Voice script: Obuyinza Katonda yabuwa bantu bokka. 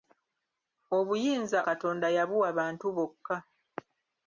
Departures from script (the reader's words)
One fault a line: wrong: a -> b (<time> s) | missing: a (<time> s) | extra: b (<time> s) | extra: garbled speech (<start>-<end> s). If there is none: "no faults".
no faults